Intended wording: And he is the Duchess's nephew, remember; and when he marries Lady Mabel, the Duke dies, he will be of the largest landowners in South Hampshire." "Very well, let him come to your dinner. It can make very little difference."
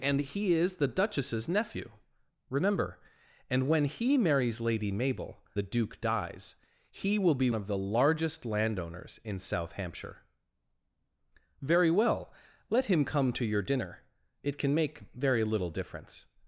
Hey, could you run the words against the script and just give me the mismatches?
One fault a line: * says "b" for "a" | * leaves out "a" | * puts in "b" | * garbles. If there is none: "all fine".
all fine